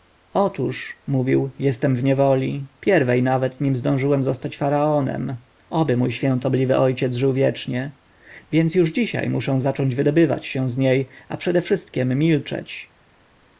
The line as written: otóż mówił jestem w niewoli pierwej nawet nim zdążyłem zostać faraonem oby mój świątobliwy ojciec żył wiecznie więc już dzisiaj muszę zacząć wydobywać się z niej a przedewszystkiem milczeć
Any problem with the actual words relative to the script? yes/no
no